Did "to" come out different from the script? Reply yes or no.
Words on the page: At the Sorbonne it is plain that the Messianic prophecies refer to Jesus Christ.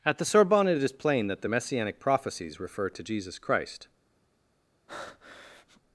no